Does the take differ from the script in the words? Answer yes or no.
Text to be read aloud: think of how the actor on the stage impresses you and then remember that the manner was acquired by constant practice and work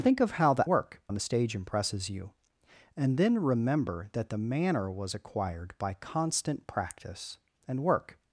yes